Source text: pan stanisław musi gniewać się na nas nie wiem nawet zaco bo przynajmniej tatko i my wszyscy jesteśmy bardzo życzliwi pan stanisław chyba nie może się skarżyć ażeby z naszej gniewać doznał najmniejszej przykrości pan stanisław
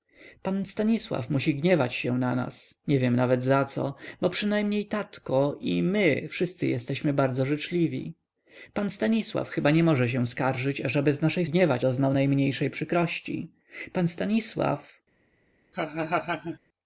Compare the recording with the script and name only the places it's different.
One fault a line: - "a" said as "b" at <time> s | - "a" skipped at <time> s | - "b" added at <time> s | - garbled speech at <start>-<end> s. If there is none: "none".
none